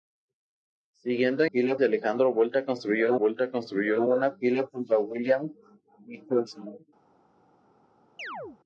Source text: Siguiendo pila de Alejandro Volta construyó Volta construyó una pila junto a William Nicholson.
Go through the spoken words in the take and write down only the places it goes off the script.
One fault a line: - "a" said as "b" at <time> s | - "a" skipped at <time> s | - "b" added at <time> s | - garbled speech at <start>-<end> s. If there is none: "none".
none